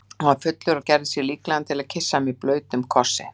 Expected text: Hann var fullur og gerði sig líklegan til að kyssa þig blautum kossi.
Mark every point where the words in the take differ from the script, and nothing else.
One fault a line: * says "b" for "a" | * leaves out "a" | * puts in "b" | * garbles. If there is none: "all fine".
* says "mig" for "þig"